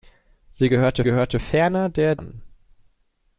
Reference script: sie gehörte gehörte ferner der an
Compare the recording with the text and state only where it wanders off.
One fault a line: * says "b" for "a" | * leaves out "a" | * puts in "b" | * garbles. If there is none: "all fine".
all fine